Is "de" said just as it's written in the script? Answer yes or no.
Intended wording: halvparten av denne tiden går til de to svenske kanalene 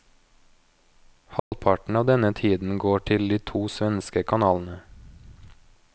yes